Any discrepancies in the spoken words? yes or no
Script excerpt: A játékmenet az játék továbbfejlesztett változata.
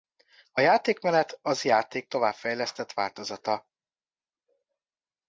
no